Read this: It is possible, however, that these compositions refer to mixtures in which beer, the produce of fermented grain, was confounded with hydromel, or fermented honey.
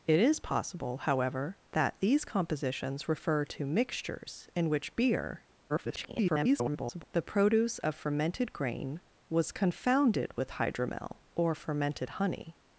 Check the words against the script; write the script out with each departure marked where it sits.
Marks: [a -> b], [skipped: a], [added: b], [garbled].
It is possible, however, that these compositions refer to mixtures in which beer, [garbled] the produce of fermented grain, was confounded with hydromel, or fermented honey.